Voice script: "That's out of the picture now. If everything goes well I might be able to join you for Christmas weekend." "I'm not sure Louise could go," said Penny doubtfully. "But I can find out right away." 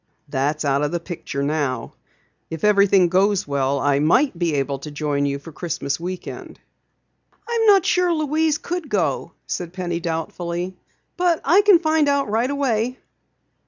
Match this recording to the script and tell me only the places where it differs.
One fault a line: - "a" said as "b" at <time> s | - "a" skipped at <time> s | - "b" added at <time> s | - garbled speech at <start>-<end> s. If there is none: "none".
none